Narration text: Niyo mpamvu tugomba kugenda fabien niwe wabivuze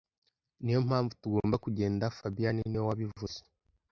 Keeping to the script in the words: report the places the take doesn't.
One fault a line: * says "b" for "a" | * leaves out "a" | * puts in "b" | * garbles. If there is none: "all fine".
all fine